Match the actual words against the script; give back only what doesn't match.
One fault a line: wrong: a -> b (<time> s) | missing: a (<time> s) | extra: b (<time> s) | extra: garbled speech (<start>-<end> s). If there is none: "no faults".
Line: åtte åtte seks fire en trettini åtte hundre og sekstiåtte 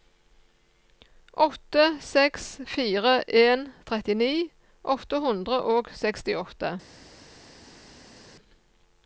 missing: åtte (1.8 s)